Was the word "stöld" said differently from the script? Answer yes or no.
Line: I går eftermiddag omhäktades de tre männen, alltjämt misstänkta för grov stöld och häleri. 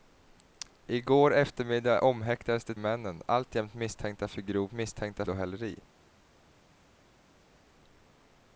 yes